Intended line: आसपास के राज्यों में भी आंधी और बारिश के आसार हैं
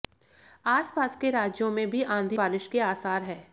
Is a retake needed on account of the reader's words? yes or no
yes